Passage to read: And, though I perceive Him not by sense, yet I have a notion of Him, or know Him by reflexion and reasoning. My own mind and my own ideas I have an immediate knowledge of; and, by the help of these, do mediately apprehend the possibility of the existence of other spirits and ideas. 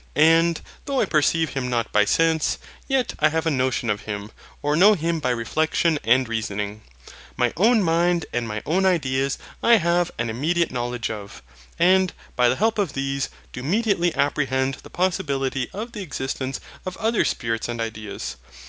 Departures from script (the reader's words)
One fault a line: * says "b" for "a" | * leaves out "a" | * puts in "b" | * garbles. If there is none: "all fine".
all fine